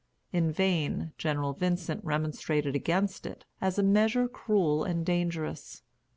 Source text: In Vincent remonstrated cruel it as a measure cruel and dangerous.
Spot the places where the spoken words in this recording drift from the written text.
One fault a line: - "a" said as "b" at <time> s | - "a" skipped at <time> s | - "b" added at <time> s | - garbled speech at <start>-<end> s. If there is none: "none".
- "vain General" added at 0.5 s
- "cruel" said as "against" at 2.8 s